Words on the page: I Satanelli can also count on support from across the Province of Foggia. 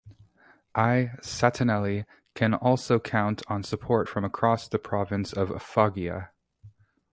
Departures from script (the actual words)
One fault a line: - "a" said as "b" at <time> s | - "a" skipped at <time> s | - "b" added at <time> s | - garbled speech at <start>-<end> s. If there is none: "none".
none